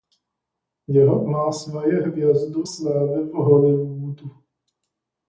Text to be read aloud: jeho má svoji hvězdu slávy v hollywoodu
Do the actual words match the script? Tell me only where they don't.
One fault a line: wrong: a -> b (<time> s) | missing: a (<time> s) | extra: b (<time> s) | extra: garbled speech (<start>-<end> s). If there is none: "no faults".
no faults